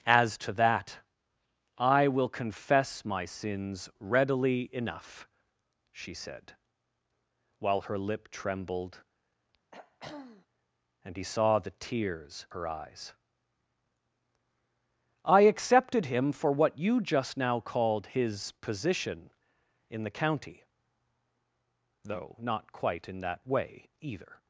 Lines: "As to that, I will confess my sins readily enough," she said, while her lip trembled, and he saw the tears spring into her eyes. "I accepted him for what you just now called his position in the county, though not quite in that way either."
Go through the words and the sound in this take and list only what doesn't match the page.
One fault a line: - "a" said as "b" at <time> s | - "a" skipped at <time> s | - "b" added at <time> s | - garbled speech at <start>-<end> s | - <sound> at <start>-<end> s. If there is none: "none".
- throat clearing at 9.7-10.5 s
- "spring into" skipped at 12.5 s